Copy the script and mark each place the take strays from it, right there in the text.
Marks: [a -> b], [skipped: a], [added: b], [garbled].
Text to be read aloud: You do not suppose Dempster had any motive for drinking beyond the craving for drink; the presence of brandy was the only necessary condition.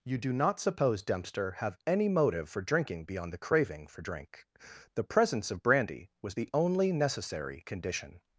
You do not suppose Dempster [had -> have] any motive for drinking beyond the craving for drink; the presence of brandy was the only necessary condition.